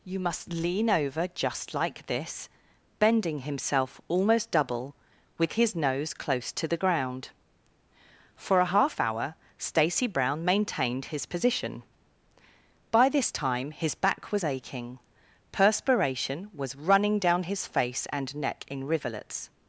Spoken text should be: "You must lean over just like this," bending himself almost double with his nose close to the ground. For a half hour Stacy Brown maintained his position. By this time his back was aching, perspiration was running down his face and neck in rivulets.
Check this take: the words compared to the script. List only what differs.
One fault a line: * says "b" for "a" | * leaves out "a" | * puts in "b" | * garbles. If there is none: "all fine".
all fine